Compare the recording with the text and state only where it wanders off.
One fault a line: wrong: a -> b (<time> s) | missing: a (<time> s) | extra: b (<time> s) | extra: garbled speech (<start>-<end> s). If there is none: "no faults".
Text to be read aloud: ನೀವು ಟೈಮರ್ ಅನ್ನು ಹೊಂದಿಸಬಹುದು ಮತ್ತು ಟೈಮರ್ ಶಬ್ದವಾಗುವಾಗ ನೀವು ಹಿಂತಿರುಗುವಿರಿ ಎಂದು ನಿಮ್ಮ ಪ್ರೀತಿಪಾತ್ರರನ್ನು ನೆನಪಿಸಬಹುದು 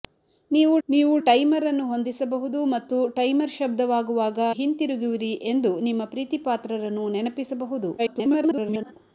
extra: ನೀವು (0.9 s)
missing: ನೀವು (4.4 s)
extra: garbled speech (8.0-8.9 s)